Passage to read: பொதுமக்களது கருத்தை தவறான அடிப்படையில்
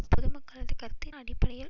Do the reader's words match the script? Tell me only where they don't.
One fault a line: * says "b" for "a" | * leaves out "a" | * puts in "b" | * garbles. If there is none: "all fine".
* leaves out "தவறான"